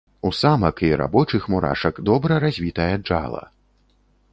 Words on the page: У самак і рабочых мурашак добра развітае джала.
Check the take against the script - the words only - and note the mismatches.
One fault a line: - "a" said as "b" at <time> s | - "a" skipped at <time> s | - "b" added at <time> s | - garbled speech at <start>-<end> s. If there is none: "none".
none